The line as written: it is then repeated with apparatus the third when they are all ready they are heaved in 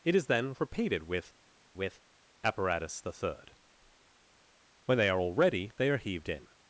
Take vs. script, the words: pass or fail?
fail